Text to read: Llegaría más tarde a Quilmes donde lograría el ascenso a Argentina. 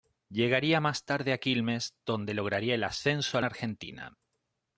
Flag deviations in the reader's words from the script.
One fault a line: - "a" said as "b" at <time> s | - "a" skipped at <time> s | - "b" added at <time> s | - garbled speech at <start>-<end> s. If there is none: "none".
none